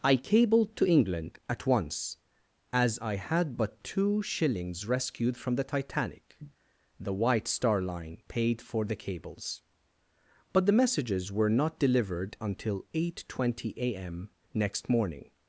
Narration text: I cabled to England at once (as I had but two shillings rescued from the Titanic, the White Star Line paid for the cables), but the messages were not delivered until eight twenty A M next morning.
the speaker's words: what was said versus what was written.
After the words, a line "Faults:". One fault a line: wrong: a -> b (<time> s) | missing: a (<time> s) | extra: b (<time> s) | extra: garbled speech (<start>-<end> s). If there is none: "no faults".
I cabled to England at once (as I had but two shillings rescued from the Titanic, the White Star Line paid for the cables), but the messages were not delivered until eight twenty A M next morning.
Faults:
no faults